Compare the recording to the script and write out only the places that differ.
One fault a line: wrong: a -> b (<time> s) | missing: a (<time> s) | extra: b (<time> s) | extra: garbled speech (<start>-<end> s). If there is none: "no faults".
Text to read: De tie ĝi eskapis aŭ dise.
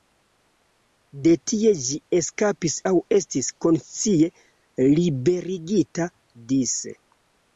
extra: estis konscie liberigita (3.2 s)